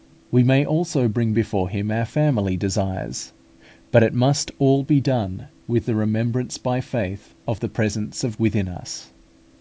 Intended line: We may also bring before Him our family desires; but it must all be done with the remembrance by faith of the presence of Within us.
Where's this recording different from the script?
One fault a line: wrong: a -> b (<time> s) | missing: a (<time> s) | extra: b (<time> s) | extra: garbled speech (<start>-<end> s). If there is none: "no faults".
no faults